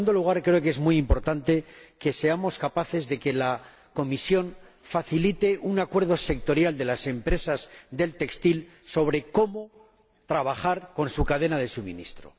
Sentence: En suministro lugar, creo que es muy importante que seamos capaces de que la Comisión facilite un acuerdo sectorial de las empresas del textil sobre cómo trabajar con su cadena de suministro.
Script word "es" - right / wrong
right